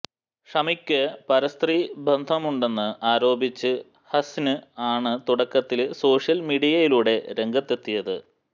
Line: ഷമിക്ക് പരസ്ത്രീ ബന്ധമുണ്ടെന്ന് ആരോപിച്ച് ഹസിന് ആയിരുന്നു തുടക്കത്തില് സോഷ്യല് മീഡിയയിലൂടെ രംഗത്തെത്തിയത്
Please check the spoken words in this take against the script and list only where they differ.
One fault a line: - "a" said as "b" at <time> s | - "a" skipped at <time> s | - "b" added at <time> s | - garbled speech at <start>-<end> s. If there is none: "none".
- "ആയിരുന്നു" said as "ആണ്" at 4.9 s